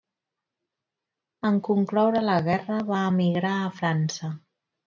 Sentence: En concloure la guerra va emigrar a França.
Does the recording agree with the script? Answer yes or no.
yes